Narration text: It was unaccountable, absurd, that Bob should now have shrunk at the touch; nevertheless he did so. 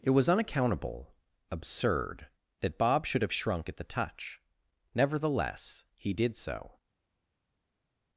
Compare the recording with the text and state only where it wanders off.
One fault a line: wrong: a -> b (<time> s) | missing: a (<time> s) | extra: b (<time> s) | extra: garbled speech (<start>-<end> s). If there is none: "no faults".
missing: now (3.2 s)